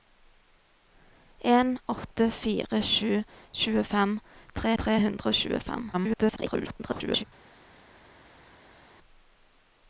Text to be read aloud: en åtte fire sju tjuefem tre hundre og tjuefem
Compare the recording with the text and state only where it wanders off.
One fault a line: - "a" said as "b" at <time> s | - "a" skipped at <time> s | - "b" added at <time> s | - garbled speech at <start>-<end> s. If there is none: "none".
- "tre" added at 4.8 s
- garbled speech at 5.9-7.2 s